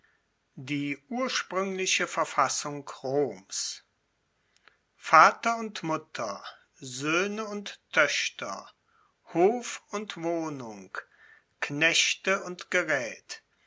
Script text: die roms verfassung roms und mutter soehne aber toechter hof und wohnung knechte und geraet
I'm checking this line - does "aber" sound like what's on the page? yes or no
no